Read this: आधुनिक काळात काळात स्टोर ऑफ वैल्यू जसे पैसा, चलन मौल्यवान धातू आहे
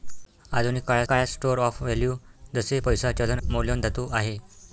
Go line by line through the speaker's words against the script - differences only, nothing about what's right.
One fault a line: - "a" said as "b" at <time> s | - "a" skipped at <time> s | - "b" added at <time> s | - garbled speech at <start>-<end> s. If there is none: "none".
none